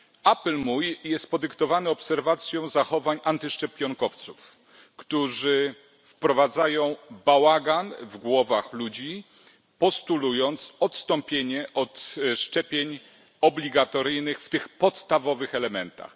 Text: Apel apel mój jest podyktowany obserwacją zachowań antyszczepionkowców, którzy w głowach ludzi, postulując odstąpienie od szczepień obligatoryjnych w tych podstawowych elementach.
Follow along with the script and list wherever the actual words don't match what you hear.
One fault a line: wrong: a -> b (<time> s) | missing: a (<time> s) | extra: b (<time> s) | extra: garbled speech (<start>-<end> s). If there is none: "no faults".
missing: apel (0.6 s)
extra: wprowadzają bałagan (6.0 s)